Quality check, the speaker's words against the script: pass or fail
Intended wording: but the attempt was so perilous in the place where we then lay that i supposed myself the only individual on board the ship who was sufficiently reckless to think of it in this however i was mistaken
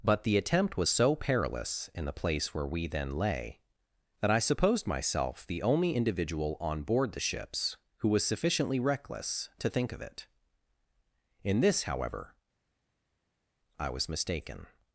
fail